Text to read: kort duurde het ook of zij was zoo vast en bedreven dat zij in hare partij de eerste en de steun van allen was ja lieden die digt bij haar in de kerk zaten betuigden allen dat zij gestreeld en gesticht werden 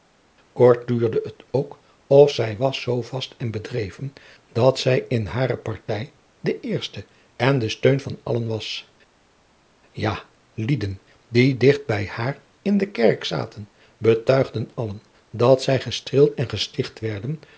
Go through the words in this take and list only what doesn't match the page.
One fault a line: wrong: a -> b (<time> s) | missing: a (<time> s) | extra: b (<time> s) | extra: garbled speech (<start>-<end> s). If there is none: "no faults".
no faults